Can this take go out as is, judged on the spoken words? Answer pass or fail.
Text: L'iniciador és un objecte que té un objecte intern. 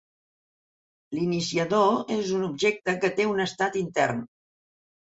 fail